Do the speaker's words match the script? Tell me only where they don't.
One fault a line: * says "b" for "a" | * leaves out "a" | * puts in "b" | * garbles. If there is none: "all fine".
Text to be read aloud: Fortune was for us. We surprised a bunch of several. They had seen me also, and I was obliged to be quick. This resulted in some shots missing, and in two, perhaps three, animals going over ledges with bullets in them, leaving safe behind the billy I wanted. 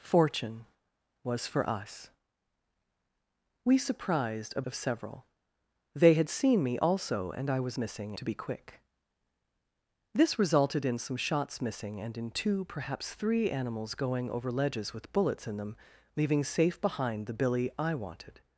* leaves out "bunch"
* says "missing" for "obliged"